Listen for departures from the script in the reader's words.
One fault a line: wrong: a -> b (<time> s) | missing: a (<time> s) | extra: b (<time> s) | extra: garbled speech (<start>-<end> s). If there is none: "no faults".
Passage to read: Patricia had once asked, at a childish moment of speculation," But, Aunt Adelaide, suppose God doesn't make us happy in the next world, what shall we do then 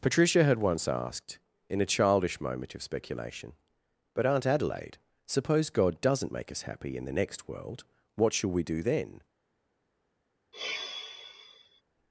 wrong: at -> in (1.7 s)